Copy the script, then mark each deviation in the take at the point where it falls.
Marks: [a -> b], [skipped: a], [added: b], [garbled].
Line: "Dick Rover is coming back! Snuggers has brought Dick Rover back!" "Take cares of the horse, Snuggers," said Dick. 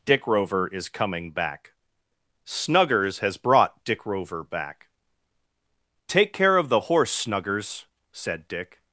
"Dick Rover is coming back! Snuggers has brought Dick Rover back!" "Take [cares -> care] of the horse, Snuggers," said Dick.